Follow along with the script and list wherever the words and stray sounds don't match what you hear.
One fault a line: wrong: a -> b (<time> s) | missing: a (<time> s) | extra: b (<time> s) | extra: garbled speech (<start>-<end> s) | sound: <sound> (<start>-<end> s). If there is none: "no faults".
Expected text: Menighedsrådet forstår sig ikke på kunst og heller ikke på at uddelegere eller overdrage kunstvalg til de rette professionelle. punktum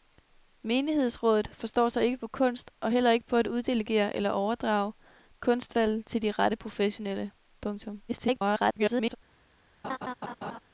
extra: garbled speech (8.1-9.2 s)
sound: laugh (9.8-10.6 s)